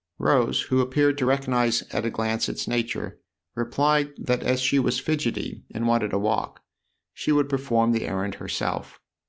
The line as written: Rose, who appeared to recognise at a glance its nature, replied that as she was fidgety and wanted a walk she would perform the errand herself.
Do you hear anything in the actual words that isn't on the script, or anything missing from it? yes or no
no